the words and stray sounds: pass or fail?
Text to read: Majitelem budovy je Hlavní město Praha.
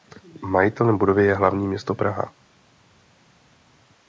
pass